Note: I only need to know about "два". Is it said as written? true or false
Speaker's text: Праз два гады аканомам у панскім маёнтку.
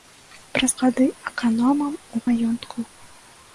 false